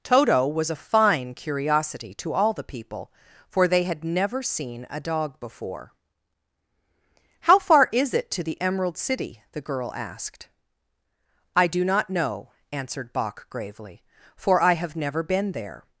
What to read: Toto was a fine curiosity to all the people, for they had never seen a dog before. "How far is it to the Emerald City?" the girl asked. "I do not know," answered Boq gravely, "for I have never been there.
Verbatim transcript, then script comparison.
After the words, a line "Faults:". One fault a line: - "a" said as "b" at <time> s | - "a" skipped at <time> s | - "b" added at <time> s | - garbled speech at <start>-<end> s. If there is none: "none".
Toto was a fine curiosity to all the people, for they had never seen a dog before. "How far is it to the Emerald City?" the girl asked. "I do not know," answered Boq gravely, "for I have never been there.
Faults:
none